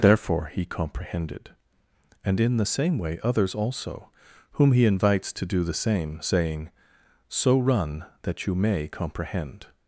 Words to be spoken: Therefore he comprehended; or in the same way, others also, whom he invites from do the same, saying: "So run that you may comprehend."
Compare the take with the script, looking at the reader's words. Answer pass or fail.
fail